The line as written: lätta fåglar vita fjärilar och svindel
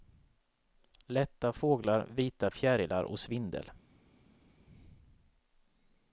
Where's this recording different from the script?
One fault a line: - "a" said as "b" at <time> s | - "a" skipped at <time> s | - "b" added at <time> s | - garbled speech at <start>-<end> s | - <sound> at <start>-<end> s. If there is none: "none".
none